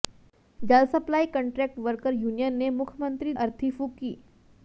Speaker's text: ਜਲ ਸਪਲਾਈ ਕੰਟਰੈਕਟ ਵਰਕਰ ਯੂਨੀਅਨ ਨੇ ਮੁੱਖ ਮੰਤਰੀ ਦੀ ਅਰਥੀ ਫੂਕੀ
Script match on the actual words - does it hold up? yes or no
no